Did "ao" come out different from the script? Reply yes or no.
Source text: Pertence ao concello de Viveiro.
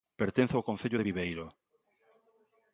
no